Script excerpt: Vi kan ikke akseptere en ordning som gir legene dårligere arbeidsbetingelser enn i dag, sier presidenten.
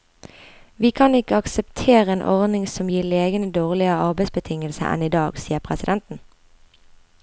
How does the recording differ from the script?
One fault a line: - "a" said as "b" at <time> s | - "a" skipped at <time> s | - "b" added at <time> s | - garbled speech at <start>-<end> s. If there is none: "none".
none